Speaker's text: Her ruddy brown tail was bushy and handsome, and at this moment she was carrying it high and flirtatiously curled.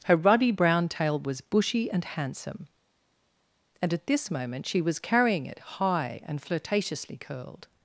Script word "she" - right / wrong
right